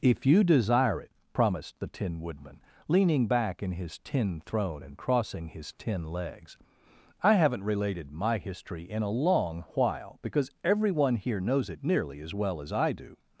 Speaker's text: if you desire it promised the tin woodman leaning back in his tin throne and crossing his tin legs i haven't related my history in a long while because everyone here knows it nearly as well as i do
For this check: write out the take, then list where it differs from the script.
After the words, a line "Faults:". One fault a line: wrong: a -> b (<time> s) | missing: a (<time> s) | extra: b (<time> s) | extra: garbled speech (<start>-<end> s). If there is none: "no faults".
if you desire it promised the tin woodman leaning back in his tin throne and crossing his tin legs i haven't related my history in a long while because everyone here knows it nearly as well as i do
Faults:
no faults